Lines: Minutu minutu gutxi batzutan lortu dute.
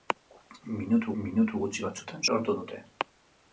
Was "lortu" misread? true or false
false